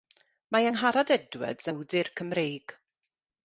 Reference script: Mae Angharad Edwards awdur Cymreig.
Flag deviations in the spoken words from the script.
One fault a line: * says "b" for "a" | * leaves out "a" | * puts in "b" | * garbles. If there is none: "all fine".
all fine